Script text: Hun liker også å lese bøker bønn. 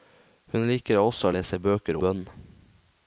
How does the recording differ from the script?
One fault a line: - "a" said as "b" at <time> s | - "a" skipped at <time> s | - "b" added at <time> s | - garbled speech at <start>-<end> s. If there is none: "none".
none